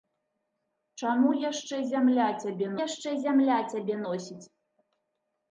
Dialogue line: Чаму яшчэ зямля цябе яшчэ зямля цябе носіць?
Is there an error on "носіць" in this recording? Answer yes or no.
no